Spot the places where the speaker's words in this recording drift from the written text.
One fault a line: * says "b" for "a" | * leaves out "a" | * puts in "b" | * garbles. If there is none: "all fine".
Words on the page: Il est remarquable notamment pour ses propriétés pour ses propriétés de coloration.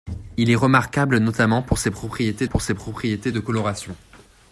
all fine